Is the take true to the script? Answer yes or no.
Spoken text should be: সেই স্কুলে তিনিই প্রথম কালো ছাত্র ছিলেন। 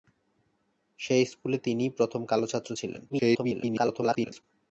no